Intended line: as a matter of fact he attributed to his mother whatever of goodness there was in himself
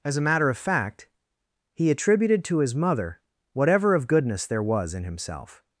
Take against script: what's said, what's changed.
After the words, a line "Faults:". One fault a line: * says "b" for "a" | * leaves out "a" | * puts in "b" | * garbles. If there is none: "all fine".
as a matter of fact he attributed to his mother whatever of goodness there was in himself
Faults:
all fine